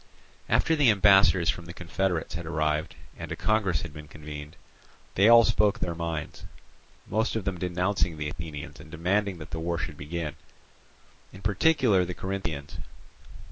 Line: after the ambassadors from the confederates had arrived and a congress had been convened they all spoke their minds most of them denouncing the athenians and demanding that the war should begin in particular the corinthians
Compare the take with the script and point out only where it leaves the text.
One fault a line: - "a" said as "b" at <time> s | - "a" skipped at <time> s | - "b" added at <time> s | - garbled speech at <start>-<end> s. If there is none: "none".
none